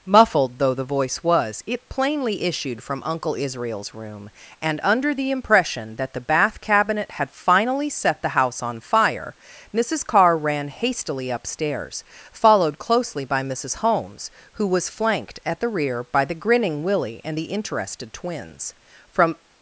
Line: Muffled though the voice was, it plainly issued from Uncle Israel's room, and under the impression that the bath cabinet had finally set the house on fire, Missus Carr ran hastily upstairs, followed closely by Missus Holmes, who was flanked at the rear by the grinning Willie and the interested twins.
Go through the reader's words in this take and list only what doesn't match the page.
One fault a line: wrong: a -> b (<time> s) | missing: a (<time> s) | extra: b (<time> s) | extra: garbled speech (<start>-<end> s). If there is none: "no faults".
extra: From (19.1 s)